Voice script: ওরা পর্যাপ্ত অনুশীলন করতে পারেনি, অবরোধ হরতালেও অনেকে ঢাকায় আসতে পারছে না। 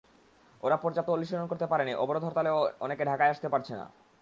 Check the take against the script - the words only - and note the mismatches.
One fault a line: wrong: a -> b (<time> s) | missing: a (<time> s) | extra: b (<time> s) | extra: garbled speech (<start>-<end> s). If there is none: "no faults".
no faults